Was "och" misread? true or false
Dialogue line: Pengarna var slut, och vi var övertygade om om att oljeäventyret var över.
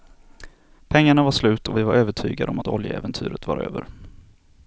false